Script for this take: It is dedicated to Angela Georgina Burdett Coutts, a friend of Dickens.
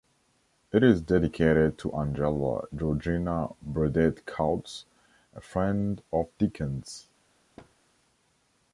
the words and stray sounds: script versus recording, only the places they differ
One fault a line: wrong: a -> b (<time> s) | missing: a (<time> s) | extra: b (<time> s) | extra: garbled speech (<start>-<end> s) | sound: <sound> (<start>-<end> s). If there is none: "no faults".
sound: thud (7.6-7.7 s)